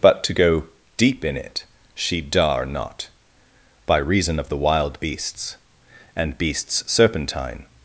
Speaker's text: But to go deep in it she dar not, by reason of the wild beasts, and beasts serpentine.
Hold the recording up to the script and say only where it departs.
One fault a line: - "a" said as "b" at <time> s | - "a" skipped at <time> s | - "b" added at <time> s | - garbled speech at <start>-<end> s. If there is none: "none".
none